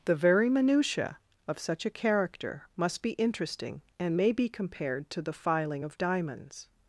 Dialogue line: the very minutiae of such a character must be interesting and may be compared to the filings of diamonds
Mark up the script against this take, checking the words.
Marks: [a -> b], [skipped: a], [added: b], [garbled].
the very minutiae of such a character must be interesting and may be compared to the [filings -> filing] of diamonds